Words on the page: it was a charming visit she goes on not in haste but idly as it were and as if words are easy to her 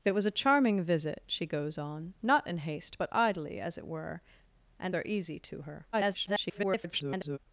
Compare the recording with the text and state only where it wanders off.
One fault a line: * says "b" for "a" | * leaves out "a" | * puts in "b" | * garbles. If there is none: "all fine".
* leaves out "as if words"
* garbles